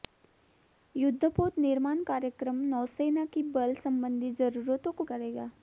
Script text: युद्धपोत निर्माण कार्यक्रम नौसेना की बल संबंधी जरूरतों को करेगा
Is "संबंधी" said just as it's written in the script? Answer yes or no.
yes